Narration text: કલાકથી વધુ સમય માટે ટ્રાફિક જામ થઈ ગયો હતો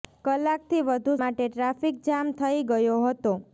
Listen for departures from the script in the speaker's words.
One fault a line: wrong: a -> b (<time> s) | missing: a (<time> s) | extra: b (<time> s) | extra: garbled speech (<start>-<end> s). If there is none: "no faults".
missing: સમય (1.1 s)